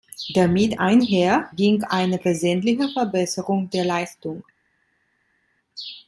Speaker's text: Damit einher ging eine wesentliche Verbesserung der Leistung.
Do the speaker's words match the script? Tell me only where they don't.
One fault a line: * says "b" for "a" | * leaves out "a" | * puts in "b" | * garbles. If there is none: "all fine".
all fine